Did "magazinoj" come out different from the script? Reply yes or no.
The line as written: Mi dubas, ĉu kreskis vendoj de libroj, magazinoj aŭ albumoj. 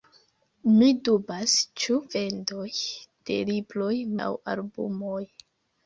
yes